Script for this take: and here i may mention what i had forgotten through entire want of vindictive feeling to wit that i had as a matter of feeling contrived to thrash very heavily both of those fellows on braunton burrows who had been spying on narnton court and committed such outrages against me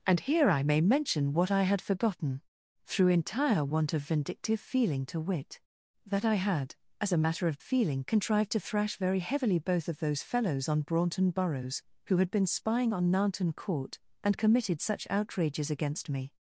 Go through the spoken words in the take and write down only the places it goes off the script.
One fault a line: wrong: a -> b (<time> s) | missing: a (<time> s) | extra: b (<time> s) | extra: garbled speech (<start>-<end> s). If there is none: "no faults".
no faults